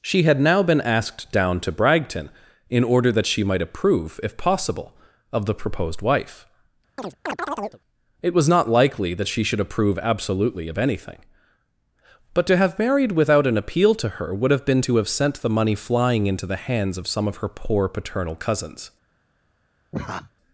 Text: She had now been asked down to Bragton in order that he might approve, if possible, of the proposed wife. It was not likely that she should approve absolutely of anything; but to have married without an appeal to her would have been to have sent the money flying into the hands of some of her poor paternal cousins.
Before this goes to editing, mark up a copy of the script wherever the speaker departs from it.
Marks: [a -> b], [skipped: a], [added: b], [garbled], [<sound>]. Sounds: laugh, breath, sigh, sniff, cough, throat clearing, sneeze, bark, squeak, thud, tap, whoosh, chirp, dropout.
She had now been asked down to Bragton in order that [he -> she] might approve, if possible, of the proposed wife. [chirp] It was not likely that she should approve absolutely of anything; but to have married without an appeal to her would have been to have sent the money flying into the hands of some of her poor paternal cousins. [laugh]